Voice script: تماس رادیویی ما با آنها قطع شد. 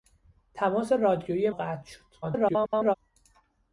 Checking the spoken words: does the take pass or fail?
fail